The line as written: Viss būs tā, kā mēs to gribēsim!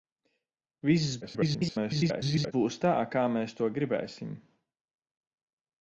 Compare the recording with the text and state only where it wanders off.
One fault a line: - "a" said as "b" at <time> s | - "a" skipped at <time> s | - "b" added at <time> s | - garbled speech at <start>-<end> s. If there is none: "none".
- garbled speech at 1.2-2.5 s